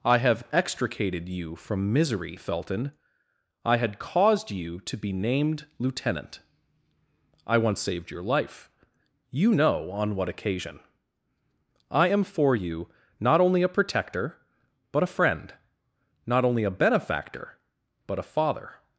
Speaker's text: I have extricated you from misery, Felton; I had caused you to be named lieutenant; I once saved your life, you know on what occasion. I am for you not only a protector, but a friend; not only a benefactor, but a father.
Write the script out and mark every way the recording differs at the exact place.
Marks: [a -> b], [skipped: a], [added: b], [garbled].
I have extricated you from misery, Felton; I had caused you to be named lieutenant; I once saved your life, you know on what occasion. I am for you not only a protector, but a friend; not only a benefactor, but a father.